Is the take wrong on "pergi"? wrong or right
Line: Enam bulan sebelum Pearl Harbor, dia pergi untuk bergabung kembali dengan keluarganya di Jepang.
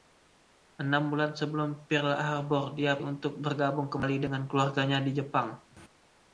wrong